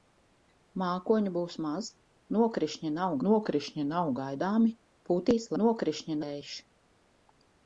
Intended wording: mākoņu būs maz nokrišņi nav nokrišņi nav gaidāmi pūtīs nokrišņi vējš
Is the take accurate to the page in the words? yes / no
yes